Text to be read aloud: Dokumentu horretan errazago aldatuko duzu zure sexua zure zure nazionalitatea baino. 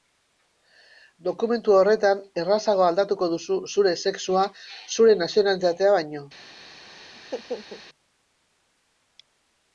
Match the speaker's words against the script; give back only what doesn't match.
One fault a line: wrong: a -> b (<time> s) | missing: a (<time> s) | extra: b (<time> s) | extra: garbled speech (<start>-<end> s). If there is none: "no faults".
missing: zure (5.2 s)